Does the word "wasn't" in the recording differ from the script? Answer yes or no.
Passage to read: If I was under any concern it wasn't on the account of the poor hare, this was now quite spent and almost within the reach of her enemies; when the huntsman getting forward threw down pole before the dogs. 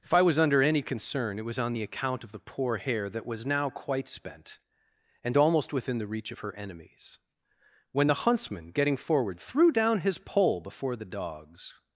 yes